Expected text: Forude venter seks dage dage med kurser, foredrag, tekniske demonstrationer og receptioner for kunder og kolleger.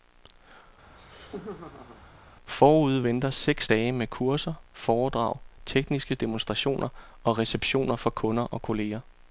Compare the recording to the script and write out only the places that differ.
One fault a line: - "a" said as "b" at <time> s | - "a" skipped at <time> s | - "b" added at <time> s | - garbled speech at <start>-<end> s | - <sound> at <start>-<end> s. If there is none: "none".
- laugh at 0.9-2.0 s
- "dage" skipped at 3.9 s